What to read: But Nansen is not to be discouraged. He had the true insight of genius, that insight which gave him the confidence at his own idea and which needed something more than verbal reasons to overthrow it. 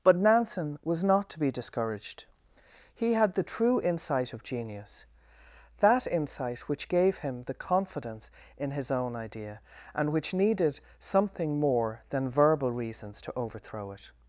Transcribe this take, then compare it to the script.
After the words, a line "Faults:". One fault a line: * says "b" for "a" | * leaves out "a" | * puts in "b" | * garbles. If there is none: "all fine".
But Nansen was not to be discouraged. He had the true insight of genius, that insight which gave him the confidence in his own idea and which needed something more than verbal reasons to overthrow it.
Faults:
* says "was" for "is"
* says "in" for "at"